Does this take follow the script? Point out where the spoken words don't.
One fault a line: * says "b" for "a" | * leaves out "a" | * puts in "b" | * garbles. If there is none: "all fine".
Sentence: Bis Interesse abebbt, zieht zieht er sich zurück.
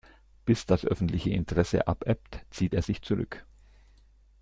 * puts in "das öffentliche"
* leaves out "zieht"